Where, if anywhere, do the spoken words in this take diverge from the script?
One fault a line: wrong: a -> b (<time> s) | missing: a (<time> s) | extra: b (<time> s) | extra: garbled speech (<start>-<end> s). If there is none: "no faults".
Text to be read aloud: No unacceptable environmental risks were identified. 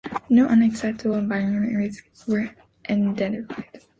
no faults